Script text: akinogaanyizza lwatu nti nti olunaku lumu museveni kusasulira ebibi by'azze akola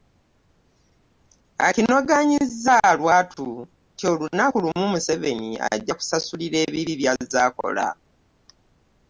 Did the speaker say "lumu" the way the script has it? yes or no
yes